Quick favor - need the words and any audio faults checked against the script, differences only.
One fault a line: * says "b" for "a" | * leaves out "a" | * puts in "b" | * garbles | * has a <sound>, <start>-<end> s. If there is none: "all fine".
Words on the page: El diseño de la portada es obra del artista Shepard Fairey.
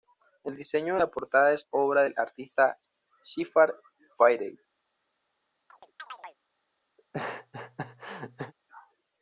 * has a chirp, 5.7-6.4 s
* has a laugh, 7.0-8.5 s